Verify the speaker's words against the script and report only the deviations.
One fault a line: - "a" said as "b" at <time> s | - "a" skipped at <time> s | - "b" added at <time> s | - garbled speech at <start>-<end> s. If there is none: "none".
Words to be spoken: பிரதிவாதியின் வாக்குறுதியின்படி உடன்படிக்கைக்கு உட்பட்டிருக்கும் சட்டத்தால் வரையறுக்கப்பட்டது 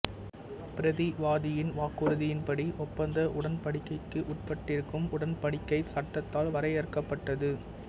- "ஒப்பந்த" added at 2.9 s
- "உடன்படிக்கை" added at 5.1 s